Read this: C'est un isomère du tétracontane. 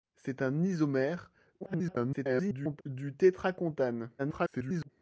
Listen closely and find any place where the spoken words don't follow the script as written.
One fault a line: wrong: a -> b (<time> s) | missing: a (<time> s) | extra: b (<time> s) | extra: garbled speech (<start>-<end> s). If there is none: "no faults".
extra: garbled speech (1.6-2.8 s)
extra: garbled speech (4.2-4.9 s)